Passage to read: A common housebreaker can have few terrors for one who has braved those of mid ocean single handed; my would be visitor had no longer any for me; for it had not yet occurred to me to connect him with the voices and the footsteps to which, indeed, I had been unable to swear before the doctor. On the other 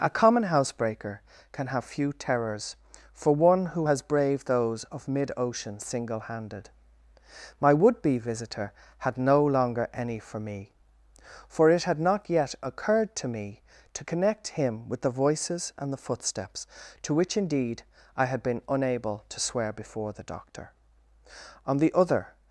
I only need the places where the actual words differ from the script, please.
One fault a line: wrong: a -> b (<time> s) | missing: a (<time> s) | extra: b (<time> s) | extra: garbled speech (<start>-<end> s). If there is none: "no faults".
no faults